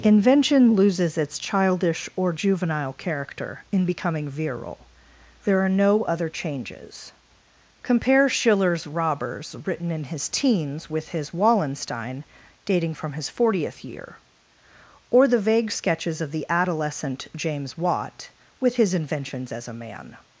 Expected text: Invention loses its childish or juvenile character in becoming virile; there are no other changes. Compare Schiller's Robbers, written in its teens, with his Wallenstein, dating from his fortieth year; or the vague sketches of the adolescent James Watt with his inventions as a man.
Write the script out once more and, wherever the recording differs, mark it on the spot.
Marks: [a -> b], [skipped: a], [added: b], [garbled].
Invention loses its childish or juvenile character in becoming virile; there are no other changes. Compare Schiller's Robbers, written in [its -> his] teens, with his Wallenstein, dating from his fortieth year; or the vague sketches of the adolescent James Watt with his inventions as a man.